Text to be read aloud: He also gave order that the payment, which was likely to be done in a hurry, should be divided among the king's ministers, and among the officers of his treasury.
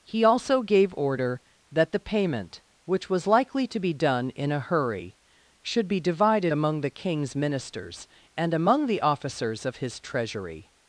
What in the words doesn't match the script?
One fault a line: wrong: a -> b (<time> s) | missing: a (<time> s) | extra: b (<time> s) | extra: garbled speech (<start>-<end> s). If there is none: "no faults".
no faults